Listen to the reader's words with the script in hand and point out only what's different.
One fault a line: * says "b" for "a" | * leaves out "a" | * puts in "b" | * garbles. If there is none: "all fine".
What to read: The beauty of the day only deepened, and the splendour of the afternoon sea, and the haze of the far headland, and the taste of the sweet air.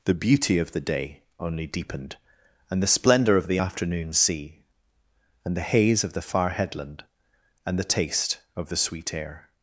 all fine